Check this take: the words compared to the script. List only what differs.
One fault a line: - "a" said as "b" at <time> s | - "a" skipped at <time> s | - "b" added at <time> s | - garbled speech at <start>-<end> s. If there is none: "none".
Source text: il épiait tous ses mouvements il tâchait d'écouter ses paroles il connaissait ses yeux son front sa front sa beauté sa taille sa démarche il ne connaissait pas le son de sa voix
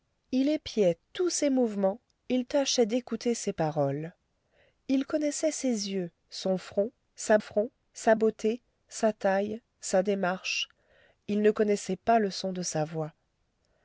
none